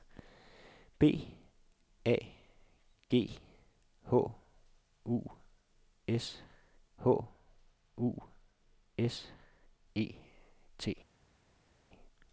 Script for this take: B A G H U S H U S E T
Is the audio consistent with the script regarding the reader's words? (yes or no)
yes